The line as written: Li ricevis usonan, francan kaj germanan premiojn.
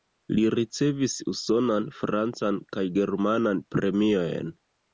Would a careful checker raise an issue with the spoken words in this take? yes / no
no